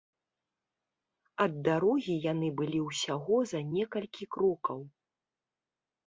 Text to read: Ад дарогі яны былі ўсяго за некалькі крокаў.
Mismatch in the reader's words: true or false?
false